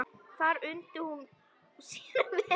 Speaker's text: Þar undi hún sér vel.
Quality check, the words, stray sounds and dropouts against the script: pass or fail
pass